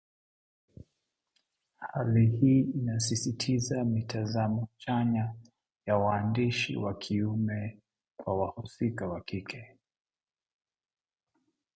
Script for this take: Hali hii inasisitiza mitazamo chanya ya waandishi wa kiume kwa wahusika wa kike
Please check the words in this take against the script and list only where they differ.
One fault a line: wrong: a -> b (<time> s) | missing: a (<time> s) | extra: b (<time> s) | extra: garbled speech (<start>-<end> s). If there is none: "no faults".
no faults